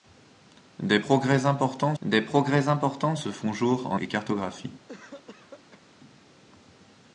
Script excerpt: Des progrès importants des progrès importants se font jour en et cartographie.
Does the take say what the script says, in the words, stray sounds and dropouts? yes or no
no